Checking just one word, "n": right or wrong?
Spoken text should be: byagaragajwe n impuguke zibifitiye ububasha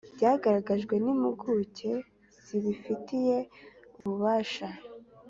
right